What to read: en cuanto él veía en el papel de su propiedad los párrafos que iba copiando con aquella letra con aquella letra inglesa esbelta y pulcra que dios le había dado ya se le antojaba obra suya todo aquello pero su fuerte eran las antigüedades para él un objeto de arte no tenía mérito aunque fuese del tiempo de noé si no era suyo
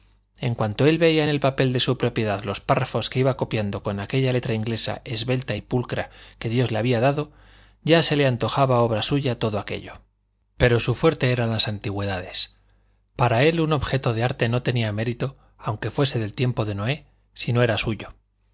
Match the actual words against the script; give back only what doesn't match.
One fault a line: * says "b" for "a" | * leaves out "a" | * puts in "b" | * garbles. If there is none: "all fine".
* leaves out "con aquella letra"